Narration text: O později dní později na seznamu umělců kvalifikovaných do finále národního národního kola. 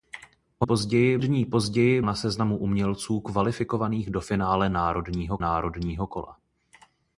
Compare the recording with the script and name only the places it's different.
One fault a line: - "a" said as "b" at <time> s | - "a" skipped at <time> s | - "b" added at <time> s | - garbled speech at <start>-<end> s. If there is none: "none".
none